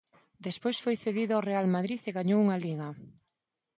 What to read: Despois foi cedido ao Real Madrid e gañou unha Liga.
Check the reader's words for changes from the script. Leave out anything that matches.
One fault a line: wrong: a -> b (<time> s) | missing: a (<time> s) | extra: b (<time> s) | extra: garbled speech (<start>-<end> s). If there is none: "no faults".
no faults